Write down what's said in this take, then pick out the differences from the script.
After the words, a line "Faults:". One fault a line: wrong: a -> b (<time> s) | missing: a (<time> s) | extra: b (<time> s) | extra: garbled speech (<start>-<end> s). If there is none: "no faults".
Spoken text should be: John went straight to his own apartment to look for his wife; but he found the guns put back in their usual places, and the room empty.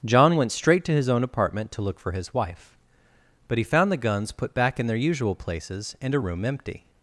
John went straight to his own apartment to look for his wife; but he found the guns put back in their usual places, and a room empty.
Faults:
wrong: the -> a (6.2 s)